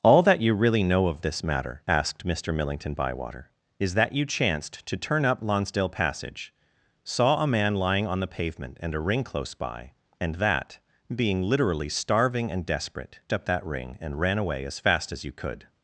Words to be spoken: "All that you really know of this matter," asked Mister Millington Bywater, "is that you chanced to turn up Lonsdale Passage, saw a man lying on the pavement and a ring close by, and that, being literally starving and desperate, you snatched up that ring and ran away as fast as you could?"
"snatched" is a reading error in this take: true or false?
true